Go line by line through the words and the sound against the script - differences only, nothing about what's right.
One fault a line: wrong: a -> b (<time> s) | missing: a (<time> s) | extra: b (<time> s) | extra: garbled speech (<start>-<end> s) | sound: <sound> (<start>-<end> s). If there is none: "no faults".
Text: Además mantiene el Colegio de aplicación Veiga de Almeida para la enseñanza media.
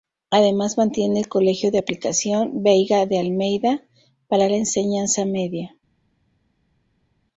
no faults